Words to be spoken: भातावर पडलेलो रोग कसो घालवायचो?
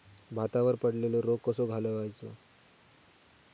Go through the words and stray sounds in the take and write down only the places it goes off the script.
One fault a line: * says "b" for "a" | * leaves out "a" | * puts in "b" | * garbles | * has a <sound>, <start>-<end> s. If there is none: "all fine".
all fine